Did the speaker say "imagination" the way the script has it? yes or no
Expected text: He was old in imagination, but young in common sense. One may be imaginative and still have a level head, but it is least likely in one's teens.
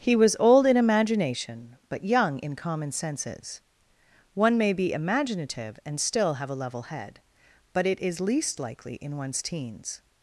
yes